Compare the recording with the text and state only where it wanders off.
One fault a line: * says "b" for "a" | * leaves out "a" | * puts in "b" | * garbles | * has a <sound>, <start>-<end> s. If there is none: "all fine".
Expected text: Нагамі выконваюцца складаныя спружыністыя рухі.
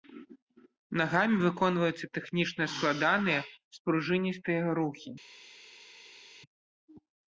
* puts in "тэхнічна"